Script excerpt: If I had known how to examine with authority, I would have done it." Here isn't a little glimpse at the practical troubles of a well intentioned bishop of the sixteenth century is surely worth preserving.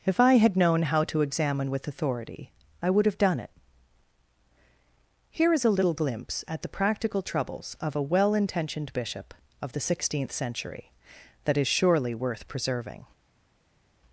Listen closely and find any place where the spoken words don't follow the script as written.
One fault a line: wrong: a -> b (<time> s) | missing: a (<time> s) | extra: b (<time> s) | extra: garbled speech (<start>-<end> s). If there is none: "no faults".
wrong: isn't -> is (5.5 s)
extra: that (11.4 s)